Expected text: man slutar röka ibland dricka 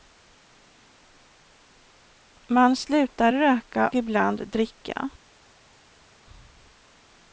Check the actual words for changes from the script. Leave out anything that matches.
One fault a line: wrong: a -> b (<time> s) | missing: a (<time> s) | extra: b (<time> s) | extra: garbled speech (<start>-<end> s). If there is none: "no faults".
no faults